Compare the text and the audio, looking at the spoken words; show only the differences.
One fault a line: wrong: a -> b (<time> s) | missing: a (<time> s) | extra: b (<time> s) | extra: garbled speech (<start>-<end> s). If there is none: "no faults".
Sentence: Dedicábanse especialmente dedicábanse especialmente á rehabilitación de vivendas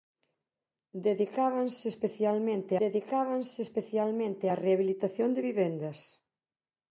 no faults